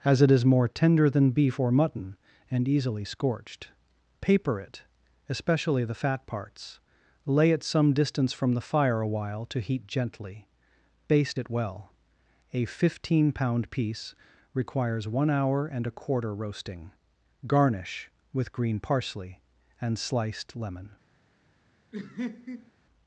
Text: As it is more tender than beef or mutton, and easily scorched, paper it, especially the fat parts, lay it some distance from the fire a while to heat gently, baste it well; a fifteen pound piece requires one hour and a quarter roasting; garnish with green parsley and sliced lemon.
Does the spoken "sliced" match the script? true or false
true